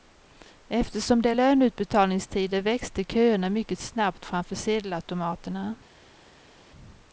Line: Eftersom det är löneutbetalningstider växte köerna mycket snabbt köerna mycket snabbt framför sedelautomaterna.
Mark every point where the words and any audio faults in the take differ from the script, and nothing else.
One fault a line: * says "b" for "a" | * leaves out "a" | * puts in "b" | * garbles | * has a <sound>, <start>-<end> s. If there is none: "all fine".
* leaves out "köerna mycket snabbt"